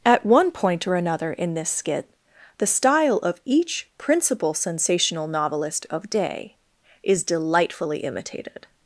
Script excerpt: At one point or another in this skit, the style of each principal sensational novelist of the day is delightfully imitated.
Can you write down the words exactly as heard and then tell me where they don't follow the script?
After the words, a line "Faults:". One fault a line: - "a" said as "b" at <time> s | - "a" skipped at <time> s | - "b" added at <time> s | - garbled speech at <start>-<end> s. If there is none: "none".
At one point or another in this skit, the style of each principal sensational novelist of day is delightfully imitated.
Faults:
- "the" skipped at 6.1 s